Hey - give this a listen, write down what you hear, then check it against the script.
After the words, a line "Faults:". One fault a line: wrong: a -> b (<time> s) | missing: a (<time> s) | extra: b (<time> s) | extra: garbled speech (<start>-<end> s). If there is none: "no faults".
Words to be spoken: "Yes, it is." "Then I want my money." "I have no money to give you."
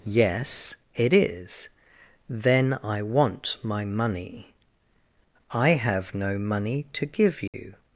"Yes, it is." "Then I want my money." "I have no money to give you."
Faults:
no faults